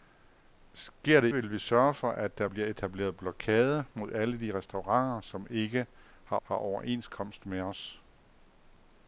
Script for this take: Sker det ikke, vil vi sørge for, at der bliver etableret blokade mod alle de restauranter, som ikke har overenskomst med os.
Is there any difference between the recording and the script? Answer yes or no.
yes